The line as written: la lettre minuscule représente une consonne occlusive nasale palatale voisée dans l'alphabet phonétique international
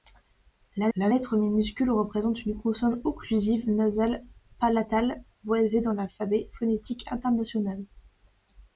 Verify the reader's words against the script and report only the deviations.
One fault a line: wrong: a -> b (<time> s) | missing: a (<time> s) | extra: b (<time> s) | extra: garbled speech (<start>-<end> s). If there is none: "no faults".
extra: la (1.0 s)